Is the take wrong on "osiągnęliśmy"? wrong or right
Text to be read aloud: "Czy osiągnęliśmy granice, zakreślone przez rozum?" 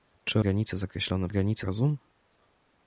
wrong